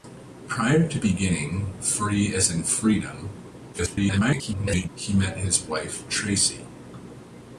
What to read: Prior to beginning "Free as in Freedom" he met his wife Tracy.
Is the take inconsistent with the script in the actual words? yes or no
yes